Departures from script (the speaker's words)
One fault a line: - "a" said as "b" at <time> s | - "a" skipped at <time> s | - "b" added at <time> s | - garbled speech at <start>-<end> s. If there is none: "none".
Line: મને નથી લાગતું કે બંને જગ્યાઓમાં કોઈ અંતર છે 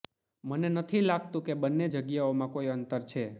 none